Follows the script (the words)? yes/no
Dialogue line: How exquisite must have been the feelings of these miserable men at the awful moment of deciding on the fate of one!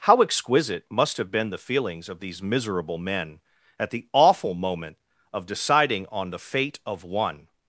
yes